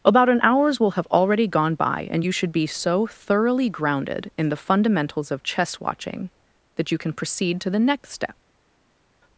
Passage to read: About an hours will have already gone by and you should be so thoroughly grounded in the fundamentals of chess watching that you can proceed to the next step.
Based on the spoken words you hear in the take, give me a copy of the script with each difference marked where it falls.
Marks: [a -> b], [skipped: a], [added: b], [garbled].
About an hours will have already gone by and you should be so thoroughly grounded in the fundamentals of chess watching that you can proceed to the next step.